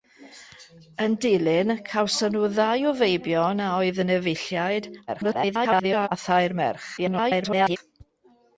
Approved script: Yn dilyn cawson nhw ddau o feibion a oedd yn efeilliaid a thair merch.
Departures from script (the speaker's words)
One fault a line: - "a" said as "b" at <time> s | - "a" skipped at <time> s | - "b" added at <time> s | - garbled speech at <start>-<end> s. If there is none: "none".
- garbled speech at 5.1-6.1 s
- garbled speech at 7.0-7.8 s